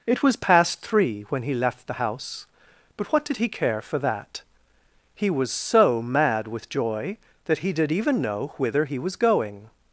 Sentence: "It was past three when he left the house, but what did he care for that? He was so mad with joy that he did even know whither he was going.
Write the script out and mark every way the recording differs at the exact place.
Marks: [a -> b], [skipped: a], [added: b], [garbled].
"It was past three when he left the house, but what did he care for that? He was so mad with joy that he did even know whither he was going.